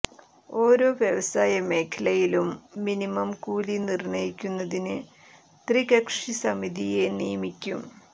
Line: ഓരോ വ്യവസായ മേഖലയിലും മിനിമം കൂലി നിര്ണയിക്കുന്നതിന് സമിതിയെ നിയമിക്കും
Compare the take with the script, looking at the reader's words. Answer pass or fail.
fail